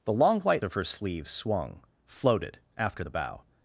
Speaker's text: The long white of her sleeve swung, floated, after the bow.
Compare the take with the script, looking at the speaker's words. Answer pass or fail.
pass